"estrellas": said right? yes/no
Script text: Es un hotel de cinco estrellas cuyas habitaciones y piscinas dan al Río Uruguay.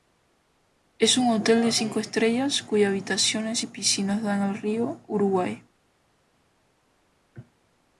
yes